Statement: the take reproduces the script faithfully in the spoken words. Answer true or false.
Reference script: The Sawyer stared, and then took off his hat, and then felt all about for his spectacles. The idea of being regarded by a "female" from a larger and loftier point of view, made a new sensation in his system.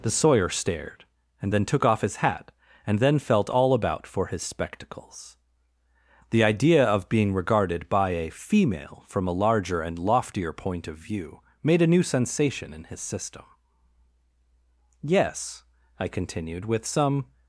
false